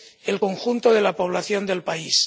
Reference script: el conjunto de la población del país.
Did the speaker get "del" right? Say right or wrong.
right